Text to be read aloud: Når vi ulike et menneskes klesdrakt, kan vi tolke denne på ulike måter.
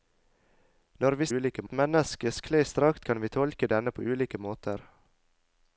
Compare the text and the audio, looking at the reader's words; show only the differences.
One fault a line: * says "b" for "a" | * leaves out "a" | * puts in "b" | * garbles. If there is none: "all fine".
all fine